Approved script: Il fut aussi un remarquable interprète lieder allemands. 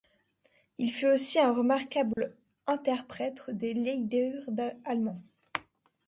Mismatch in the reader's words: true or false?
true